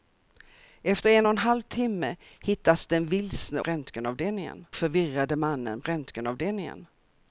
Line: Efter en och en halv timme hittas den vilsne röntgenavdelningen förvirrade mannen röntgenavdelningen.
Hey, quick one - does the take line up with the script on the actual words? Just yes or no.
yes